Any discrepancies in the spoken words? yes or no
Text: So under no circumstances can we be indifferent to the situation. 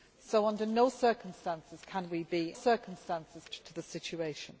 yes